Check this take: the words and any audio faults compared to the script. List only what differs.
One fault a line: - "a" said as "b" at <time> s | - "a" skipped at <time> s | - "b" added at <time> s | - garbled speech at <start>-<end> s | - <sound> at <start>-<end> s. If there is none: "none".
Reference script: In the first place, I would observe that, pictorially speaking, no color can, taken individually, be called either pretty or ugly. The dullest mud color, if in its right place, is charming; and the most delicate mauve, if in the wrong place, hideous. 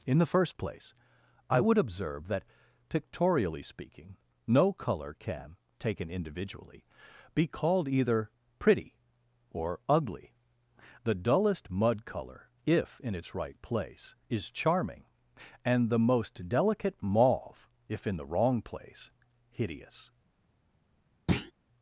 - thud at 21.3-21.5 s